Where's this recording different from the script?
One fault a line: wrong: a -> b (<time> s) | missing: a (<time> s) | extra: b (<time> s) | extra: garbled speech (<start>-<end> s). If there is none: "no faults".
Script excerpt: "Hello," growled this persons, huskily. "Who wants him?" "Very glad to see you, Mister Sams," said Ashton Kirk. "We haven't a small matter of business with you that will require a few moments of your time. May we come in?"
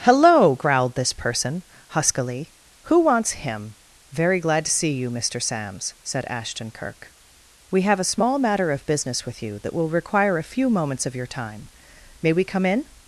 wrong: persons -> person (1.1 s)
wrong: haven't -> have (7.8 s)